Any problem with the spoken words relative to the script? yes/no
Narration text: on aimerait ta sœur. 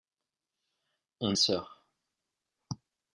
yes